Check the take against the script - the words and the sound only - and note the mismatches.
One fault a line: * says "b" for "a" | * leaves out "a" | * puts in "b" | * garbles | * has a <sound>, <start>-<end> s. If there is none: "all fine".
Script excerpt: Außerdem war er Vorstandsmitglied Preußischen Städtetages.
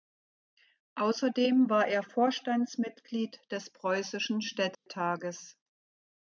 * puts in "des"
* has a dropout, 4.7-4.9 s